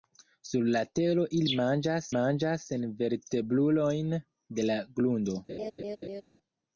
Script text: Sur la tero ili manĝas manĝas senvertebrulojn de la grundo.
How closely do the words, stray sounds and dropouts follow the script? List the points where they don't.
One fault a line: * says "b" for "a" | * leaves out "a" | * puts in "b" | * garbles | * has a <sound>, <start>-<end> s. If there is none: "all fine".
* has a laugh, 5.5-6.2 s